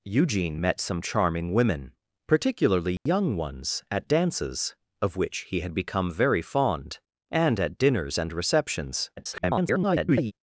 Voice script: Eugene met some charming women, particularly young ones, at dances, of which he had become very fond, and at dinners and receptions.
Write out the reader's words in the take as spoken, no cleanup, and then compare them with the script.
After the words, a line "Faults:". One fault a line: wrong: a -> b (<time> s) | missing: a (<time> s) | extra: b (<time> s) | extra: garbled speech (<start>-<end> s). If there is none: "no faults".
Eugene met some charming women, particularly young ones, at dances, of which he had become very fond, and at dinners and receptions. [garbled]
Faults:
extra: garbled speech (9.2-10.3 s)